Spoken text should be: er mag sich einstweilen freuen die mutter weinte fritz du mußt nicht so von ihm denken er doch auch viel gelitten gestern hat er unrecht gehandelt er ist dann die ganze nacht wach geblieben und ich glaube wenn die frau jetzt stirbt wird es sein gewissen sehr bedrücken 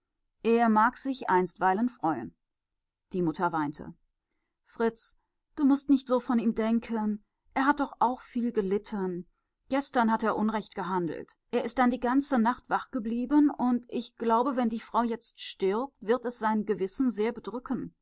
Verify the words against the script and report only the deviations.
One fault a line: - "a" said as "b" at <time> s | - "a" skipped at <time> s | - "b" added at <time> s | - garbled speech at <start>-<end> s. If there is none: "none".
- "hat" added at 7.7 s